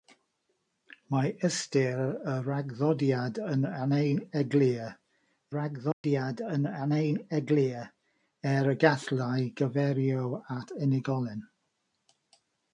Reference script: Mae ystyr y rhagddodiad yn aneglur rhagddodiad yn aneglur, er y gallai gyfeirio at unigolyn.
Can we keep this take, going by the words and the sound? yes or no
no